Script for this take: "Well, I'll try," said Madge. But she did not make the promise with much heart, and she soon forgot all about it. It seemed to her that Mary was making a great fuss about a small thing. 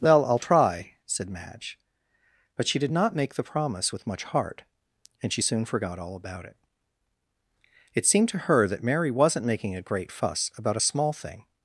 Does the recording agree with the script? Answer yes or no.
no